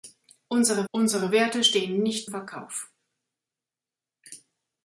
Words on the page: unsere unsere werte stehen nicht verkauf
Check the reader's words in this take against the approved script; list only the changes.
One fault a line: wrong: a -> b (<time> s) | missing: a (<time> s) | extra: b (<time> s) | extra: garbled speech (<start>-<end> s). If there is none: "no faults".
no faults